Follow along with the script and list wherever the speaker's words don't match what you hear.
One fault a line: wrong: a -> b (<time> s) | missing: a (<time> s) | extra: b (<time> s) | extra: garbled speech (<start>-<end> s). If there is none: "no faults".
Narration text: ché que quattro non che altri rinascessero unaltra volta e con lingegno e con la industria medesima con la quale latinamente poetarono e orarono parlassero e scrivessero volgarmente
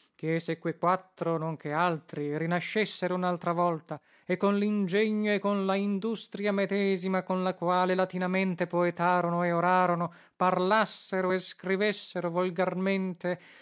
extra: se (0.4 s)